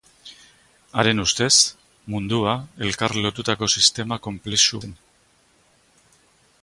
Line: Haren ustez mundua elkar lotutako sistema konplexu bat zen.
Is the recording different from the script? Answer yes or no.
yes